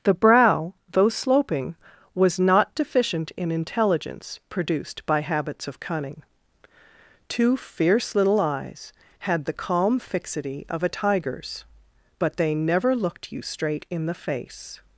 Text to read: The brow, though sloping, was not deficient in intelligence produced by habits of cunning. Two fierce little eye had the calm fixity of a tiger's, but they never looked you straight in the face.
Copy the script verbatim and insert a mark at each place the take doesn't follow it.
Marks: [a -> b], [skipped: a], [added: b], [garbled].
The brow, though sloping, was not deficient in intelligence produced by habits of cunning. Two fierce little [eye -> eyes] had the calm fixity of a tiger's, but they never looked you straight in the face.